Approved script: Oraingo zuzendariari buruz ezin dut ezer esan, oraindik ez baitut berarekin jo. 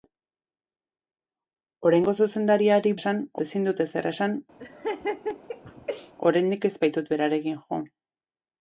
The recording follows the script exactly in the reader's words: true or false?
false